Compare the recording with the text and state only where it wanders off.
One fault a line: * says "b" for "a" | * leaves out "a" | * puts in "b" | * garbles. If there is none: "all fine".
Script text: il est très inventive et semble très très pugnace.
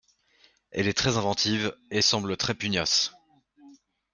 * says "elle" for "il"
* leaves out "très"